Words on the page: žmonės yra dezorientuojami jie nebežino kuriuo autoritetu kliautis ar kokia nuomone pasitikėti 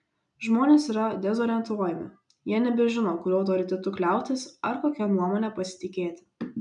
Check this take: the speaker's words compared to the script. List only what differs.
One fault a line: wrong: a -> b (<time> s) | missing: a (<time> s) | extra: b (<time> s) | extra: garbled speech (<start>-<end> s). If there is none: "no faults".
no faults